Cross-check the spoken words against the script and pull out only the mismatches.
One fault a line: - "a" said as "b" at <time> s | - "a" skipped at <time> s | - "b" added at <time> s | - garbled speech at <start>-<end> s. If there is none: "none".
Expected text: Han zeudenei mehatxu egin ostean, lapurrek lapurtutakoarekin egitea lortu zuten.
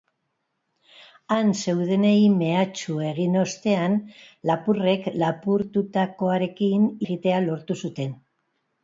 none